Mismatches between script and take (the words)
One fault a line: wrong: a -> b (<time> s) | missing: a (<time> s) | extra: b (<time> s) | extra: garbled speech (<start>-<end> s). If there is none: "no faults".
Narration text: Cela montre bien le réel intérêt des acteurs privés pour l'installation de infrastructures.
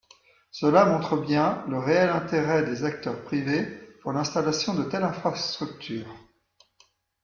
extra: telles (4.8 s)